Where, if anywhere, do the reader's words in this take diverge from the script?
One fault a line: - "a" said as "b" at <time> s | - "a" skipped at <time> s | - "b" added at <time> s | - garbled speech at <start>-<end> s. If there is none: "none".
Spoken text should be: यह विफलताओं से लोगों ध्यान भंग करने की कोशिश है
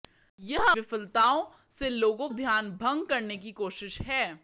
none